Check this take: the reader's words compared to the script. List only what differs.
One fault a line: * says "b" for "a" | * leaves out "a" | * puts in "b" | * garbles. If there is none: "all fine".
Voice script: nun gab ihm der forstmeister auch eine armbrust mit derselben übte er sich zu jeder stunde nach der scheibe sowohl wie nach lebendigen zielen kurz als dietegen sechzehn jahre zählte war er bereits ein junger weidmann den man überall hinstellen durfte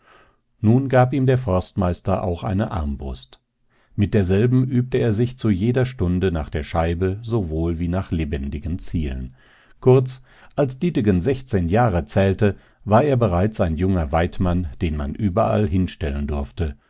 all fine